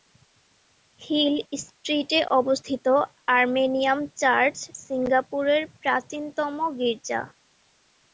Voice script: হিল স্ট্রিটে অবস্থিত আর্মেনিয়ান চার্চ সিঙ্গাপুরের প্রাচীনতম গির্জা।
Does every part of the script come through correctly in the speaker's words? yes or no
yes